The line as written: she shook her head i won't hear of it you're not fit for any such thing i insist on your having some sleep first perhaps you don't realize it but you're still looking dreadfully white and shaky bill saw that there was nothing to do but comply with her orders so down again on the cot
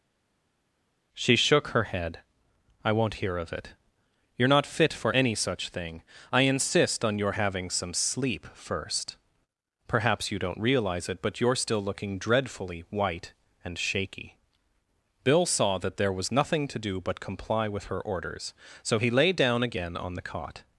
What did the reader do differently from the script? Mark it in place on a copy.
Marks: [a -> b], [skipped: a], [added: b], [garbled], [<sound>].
she shook her head i won't hear of it you're not fit for any such thing i insist on your having some sleep first perhaps you don't realize it but you're still looking dreadfully white and shaky bill saw that there was nothing to do but comply with her orders so [added: he lay] down again on the cot